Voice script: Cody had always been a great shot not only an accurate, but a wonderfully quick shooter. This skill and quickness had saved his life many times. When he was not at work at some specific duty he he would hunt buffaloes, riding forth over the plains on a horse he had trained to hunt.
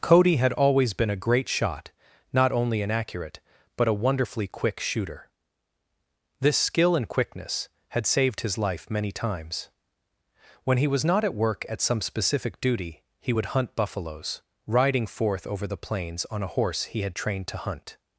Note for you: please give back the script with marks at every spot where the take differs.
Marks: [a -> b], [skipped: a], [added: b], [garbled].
Cody had always been a great shot not only an accurate, but a wonderfully quick shooter. This skill and quickness had saved his life many times. When he was not at work at some specific duty he [skipped: he] would hunt buffaloes, riding forth over the plains on a horse he had trained to hunt.